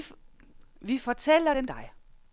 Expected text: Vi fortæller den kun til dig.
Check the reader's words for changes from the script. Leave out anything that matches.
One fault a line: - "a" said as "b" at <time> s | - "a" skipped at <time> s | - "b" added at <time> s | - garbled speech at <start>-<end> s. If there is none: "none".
- "kun til" skipped at 1.7 s